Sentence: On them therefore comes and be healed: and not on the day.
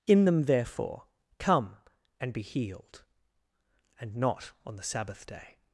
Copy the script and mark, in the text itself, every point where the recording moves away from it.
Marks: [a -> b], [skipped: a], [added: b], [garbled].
[On -> In] them therefore [comes -> come] and be healed: and not on the [added: sabbath] day.